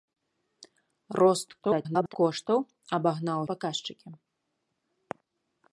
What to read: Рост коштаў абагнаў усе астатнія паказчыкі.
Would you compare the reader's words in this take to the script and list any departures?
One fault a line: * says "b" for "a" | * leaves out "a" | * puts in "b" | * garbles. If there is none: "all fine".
* garbles
* leaves out "усе астатнія"